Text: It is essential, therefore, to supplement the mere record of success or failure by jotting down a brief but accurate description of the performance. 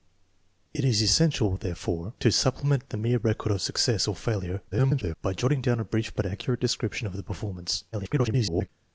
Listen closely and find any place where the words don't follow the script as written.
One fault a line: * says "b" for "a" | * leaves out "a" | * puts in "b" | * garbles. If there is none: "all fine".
* garbles
* garbles